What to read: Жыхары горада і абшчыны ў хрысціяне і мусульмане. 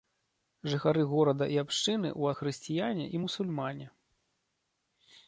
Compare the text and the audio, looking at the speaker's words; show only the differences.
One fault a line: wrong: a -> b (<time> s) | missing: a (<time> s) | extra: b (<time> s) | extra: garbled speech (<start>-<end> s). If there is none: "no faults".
no faults